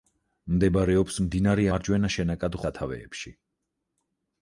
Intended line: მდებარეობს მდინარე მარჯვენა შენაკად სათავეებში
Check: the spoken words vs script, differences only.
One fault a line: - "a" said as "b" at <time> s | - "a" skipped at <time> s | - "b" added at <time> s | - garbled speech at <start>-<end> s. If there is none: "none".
none